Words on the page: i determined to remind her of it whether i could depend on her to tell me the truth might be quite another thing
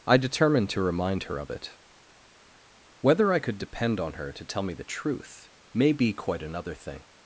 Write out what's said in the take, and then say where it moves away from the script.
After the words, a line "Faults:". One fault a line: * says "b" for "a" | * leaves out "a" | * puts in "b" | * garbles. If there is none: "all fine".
i determined to remind her of it whether i could depend on her to tell me the truth may be quite another thing
Faults:
* says "may" for "might"